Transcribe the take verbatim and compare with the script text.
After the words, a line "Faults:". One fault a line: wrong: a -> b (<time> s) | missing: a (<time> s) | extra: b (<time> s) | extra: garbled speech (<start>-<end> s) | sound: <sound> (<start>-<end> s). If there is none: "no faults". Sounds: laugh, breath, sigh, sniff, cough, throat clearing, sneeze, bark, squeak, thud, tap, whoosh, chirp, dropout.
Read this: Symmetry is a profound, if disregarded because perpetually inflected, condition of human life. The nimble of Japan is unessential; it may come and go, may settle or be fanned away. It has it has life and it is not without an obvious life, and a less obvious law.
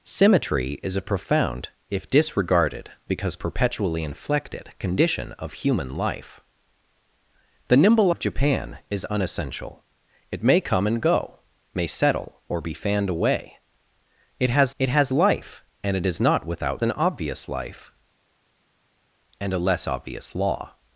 Symmetry is a profound, if disregarded because perpetually inflected, condition of human life. The nimble of Japan is unessential; it may come and go, may settle or be fanned away. It has it has life and it is not without an obvious life, and a less obvious law.
Faults:
no faults